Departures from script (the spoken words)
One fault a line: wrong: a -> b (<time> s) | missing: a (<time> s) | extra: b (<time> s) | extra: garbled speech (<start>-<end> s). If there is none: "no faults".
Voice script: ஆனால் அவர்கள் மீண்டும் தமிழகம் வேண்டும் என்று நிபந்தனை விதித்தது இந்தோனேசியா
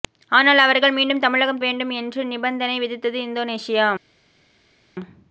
no faults